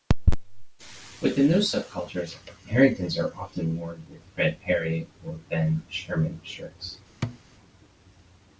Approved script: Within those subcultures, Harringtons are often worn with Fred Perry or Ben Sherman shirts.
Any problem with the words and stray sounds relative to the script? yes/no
yes